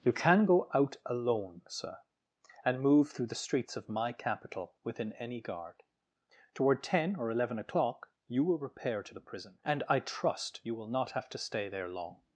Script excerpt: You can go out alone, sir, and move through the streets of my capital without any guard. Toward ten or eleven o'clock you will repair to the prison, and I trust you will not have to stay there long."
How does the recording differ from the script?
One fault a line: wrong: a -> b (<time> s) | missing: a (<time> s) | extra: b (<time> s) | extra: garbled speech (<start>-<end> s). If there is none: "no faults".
wrong: without -> within (4.8 s)